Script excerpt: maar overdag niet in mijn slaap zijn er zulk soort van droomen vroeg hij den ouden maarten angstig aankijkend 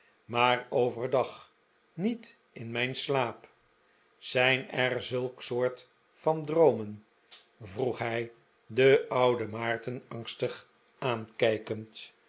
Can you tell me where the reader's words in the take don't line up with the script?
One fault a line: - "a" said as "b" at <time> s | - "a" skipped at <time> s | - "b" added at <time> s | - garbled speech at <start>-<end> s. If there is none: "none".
none